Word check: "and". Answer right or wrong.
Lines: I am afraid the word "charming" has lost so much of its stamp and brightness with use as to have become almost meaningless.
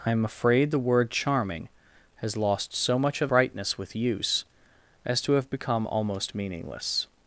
wrong